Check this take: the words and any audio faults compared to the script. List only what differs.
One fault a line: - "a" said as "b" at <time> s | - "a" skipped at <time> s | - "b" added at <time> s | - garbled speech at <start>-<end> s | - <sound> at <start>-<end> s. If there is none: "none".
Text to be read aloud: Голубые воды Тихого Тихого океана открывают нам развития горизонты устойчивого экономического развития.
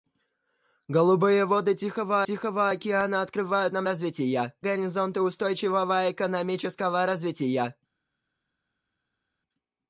none